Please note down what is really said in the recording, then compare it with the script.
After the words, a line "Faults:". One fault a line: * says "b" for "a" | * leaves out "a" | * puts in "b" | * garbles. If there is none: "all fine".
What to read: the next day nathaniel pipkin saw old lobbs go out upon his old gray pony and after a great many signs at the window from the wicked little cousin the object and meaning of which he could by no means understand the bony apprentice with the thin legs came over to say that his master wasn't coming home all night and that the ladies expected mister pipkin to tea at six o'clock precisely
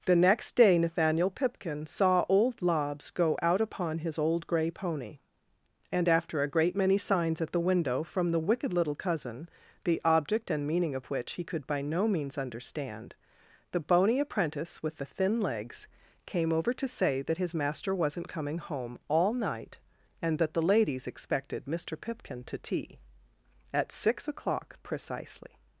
the next day nathaniel pipkin saw old lobbs go out upon his old gray pony and after a great many signs at the window from the wicked little cousin the object and meaning of which he could by no means understand the bony apprentice with the thin legs came over to say that his master wasn't coming home all night and that the ladies expected mister pipkin to tea at six o'clock precisely
Faults:
all fine